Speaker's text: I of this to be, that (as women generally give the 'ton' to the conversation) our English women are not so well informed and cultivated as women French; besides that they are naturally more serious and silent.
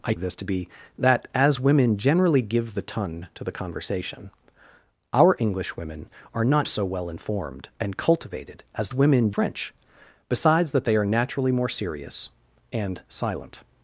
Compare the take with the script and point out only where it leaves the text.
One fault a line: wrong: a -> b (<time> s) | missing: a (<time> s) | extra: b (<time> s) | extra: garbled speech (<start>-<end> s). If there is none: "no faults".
no faults